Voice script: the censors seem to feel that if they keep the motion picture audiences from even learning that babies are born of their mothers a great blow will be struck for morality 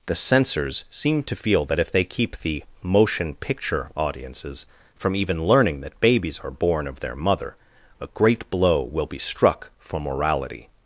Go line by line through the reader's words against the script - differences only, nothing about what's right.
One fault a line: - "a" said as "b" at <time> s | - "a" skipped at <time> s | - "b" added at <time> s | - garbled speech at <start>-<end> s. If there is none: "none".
- "mothers" said as "mother" at 7.2 s